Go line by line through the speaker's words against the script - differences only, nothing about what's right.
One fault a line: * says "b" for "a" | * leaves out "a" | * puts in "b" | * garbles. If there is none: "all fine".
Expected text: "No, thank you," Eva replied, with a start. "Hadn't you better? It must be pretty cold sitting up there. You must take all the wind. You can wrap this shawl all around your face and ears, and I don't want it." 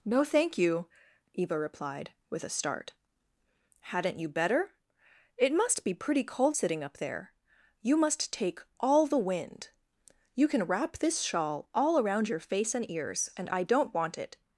all fine